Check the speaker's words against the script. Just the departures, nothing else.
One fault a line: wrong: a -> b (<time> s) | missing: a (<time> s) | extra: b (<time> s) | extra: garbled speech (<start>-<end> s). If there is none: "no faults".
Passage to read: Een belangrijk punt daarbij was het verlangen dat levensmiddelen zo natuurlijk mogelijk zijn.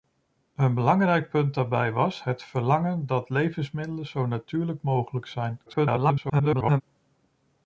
extra: garbled speech (5.7-6.8 s)